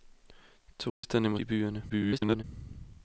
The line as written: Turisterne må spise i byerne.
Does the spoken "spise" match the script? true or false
false